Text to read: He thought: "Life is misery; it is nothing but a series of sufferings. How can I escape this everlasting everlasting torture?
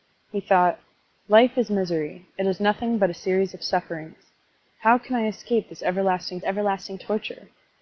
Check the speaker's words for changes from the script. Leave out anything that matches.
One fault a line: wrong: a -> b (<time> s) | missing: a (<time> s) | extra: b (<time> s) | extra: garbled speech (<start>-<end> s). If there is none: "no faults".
no faults